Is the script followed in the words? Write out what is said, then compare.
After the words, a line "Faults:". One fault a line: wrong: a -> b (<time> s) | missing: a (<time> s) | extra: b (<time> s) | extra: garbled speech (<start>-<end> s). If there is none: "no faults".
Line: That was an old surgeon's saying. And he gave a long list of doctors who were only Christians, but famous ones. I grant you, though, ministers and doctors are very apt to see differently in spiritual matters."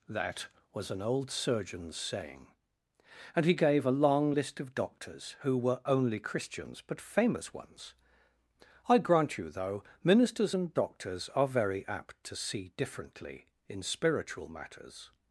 That was an old surgeon's saying. And he gave a long list of doctors who were only Christians, but famous ones. I grant you, though, ministers and doctors are very apt to see differently in spiritual matters."
Faults:
no faults